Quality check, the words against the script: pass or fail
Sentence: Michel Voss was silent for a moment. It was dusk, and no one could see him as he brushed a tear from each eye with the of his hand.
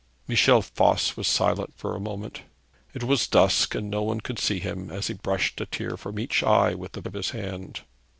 pass